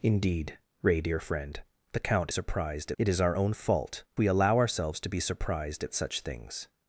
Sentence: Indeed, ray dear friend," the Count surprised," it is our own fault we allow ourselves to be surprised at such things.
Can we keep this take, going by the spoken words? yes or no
yes